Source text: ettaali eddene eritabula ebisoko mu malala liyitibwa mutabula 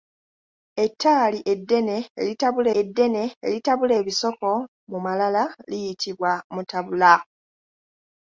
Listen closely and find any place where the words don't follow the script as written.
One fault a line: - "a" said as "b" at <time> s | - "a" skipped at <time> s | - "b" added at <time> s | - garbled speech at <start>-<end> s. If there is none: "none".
- "eddene eritabula" added at 2.8 s